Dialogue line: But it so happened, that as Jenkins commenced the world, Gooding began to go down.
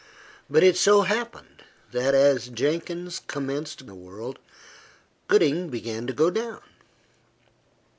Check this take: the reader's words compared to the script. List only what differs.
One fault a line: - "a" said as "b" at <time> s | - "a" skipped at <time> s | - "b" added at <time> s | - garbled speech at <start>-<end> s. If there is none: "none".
none